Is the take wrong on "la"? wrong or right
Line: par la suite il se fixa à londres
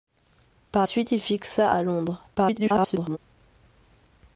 wrong